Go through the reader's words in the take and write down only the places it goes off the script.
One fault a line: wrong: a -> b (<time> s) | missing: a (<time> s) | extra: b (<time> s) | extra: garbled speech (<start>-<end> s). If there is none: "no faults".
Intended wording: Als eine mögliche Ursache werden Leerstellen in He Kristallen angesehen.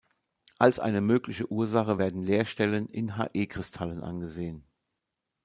no faults